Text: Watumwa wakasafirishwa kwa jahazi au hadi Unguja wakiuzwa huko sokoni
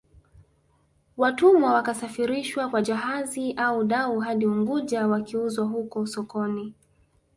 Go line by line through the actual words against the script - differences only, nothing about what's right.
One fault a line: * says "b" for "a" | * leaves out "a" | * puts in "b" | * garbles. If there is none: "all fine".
* puts in "dau"